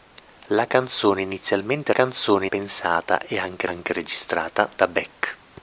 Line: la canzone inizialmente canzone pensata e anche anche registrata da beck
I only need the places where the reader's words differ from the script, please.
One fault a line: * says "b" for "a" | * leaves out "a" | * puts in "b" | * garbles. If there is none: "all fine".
all fine